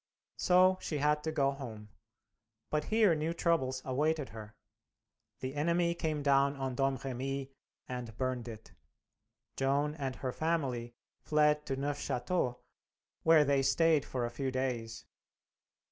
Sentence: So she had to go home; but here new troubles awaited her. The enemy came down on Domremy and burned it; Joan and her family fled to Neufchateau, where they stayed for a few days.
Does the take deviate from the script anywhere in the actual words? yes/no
no